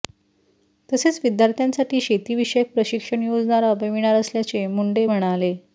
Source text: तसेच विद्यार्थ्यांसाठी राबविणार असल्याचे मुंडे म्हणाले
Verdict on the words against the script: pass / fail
fail